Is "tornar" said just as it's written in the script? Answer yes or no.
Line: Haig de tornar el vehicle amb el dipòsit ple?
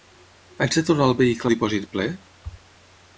yes